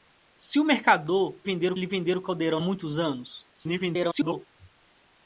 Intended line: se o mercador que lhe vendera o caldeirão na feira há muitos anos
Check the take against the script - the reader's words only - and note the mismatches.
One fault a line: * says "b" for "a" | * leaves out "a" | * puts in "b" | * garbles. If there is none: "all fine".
* says "vendera" for "que"
* leaves out "na feira há"
* garbles